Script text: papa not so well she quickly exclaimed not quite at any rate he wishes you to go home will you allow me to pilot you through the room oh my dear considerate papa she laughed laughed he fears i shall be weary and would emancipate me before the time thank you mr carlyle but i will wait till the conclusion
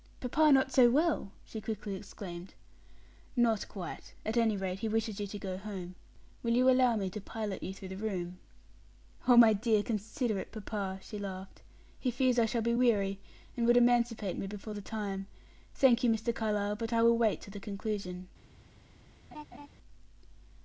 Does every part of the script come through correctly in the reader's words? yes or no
no